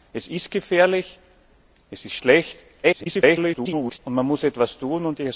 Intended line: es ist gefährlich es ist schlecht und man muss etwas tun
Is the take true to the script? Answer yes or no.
no